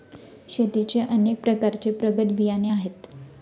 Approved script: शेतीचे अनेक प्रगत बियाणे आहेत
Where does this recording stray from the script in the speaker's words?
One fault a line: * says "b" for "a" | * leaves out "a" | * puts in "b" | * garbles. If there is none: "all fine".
* puts in "प्रकारचे"